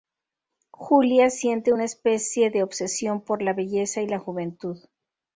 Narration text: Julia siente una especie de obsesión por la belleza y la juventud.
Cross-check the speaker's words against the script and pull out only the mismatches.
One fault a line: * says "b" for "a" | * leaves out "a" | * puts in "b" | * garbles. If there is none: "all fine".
all fine